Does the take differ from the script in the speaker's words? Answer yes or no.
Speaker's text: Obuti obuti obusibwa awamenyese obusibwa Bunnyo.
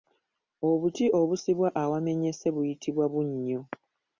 yes